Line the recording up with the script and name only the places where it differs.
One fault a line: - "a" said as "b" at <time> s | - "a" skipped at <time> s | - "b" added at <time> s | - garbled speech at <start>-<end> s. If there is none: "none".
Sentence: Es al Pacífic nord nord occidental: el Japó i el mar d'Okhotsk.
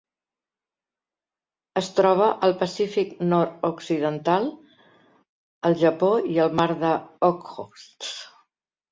- "troba" added at 2.0 s
- "nord" skipped at 3.7 s